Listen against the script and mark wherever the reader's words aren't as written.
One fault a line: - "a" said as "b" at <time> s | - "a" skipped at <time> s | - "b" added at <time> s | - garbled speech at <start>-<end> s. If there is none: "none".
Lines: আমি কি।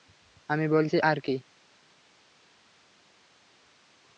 - "বলছি আর" added at 0.7 s